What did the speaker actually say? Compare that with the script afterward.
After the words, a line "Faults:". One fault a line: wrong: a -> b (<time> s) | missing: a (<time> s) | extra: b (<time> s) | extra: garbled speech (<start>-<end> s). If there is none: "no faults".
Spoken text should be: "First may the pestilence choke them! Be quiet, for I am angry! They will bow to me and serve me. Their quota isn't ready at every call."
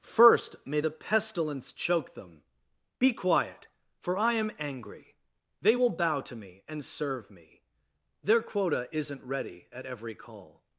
"First may the pestilence choke them! Be quiet, for I am angry! They will bow to me and serve me. Their quota isn't ready at every call."
Faults:
no faults